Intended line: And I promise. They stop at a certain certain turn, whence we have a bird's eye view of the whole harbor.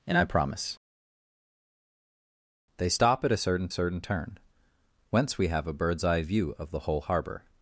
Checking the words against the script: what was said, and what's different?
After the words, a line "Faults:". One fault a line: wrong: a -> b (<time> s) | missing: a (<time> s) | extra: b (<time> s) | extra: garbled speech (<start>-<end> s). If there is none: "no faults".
And I promise. They stop at a certain certain turn, whence we have a bird's eye view of the whole harbor.
Faults:
no faults